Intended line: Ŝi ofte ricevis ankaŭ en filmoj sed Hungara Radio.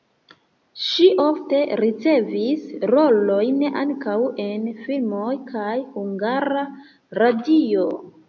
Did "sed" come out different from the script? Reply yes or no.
yes